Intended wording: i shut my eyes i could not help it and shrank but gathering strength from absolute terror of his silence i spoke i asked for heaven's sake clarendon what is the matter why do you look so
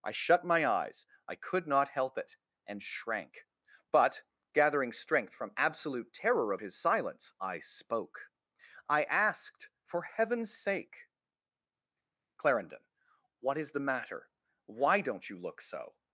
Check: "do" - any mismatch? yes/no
yes